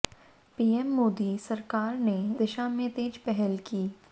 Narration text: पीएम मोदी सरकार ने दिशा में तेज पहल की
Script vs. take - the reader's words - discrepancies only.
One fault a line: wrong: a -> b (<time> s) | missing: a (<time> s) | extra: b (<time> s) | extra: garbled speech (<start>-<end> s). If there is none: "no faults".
no faults